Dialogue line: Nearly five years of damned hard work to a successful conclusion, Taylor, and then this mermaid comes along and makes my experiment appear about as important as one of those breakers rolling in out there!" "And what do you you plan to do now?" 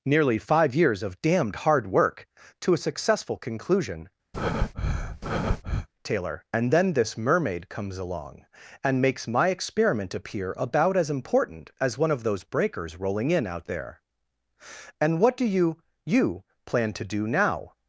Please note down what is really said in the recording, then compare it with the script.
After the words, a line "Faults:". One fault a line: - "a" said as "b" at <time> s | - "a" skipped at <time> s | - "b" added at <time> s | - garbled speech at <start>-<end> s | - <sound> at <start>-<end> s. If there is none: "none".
Nearly five years of damned hard work to a successful conclusion, Taylor, and then this mermaid comes along and makes my experiment appear about as important as one of those breakers rolling in out there!" "And what do you you plan to do now?"
Faults:
- breath at 4.3-5.9 s